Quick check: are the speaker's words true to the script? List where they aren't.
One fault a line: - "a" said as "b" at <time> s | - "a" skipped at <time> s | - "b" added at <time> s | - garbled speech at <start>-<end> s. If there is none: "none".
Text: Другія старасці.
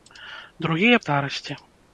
none